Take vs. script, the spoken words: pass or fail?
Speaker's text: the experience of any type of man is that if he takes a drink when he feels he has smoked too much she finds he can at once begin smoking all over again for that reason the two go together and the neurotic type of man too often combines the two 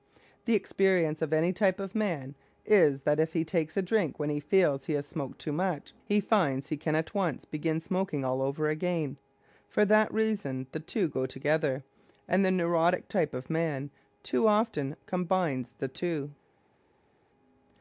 fail